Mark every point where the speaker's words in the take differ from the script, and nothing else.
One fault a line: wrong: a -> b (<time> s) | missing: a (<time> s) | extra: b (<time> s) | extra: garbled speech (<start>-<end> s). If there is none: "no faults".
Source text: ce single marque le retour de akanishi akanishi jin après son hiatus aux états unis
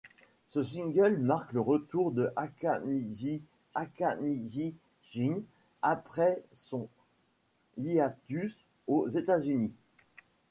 no faults